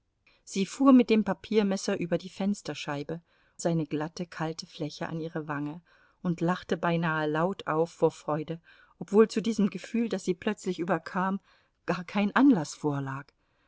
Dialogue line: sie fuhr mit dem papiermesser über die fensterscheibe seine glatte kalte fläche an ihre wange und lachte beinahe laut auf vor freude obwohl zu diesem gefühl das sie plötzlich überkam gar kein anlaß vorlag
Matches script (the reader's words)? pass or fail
pass